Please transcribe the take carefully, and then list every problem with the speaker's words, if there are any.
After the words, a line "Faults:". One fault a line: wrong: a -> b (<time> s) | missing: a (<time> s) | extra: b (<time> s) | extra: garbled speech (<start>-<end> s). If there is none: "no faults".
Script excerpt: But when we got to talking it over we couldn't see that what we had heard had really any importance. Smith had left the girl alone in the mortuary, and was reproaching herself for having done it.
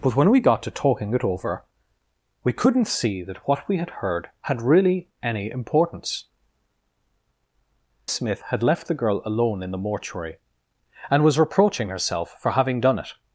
But when we got to talking it over we couldn't see that what we had heard had really any importance. Smith had left the girl alone in the mortuary, and was reproaching herself for having done it.
Faults:
no faults